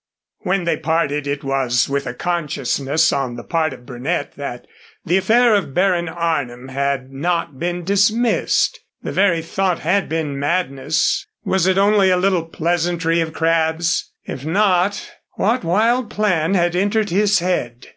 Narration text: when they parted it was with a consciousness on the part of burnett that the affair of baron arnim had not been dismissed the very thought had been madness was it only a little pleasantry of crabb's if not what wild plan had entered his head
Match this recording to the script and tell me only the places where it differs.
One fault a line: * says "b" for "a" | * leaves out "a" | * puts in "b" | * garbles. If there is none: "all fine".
all fine